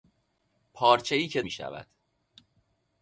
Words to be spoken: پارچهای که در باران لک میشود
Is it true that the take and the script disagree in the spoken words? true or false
true